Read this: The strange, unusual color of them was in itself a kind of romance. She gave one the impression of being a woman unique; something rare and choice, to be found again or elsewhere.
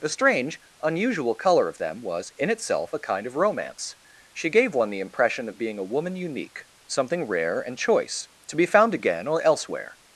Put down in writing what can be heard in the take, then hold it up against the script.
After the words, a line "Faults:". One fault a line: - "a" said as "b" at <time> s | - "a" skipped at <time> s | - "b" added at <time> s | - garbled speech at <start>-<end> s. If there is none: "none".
The strange, unusual color of them was in itself a kind of romance. She gave one the impression of being a woman unique; something rare and choice, to be found again or elsewhere.
Faults:
none